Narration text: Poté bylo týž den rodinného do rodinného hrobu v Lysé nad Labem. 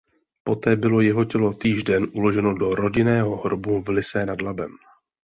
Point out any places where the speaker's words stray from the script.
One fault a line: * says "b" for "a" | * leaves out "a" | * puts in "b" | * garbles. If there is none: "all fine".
* puts in "jeho tělo"
* says "uloženo" for "rodinného"